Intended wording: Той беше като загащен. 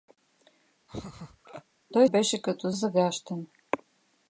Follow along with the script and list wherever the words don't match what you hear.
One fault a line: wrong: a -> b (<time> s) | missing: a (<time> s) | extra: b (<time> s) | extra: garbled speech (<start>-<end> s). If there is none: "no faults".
no faults